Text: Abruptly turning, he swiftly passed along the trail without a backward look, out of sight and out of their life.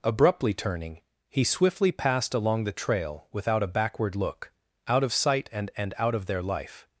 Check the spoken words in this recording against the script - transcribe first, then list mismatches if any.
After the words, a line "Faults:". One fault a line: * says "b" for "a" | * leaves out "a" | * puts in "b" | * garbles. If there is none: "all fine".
Abruptly turning, he swiftly passed along the trail without a backward look, out of sight and and out of their life.
Faults:
* puts in "and"